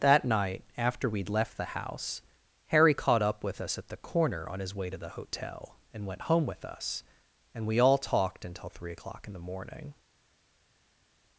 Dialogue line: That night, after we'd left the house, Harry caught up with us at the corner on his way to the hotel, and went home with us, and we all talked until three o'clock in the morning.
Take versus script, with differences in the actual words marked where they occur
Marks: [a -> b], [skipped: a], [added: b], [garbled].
That night, after we'd left the house, Harry caught up with us at the corner on his way to the hotel, and went home with us, and we all talked until three o'clock in the morning.